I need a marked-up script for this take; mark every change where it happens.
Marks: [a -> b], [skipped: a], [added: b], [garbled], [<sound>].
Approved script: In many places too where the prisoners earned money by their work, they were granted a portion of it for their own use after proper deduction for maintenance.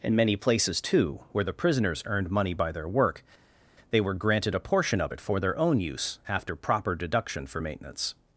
In many places too where the prisoners earned money by their work, they were granted a portion of it for their own use after proper deduction for maintenance.